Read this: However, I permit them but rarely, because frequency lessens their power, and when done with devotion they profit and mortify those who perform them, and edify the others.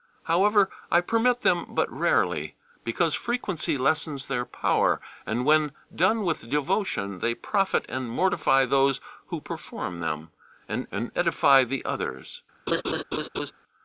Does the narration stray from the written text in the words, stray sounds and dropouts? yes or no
yes